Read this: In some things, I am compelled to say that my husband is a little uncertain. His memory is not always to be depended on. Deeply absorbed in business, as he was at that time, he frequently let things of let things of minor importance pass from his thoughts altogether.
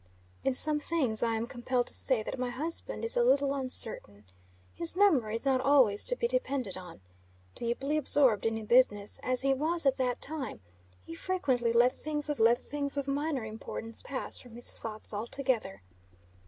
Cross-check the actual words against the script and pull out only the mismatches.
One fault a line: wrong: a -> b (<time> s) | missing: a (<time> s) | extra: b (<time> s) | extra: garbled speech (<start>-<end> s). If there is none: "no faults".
no faults